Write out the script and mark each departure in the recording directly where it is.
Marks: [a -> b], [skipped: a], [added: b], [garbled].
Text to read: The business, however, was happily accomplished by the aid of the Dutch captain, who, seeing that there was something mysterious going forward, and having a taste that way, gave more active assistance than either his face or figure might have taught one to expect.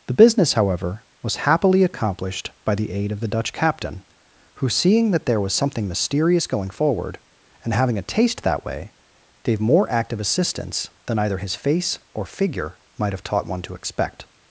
The business, however, was happily accomplished by the aid of the Dutch captain, who, seeing that there was something mysterious going forward, and having a taste that way, gave more active assistance than either his face or figure might have taught one to expect.